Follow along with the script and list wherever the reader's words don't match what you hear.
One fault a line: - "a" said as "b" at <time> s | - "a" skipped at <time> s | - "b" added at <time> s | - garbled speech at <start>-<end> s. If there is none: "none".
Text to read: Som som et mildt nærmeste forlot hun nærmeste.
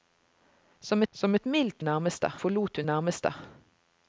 none